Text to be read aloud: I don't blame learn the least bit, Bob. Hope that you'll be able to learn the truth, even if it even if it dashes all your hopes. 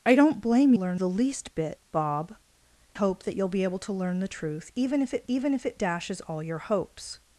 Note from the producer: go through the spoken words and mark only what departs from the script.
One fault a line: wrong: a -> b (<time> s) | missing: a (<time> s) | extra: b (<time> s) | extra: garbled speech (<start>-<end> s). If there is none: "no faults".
no faults